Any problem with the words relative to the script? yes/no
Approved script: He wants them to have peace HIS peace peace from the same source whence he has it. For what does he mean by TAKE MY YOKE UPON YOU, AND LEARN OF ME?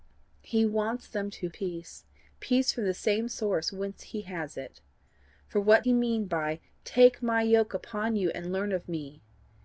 yes